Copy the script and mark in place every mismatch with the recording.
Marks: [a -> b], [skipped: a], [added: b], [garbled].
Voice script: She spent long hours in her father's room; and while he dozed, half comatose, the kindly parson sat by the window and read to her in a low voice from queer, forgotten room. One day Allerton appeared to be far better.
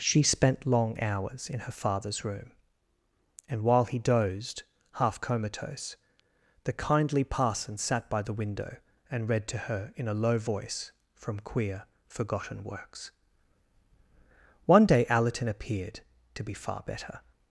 She spent long hours in her father's room; and while he dozed, half comatose, the kindly parson sat by the window and read to her in a low voice from queer, forgotten [room. -> works] One day Allerton appeared to be far better.